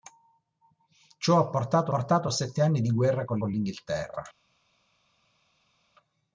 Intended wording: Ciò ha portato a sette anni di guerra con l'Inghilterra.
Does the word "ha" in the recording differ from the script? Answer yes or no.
no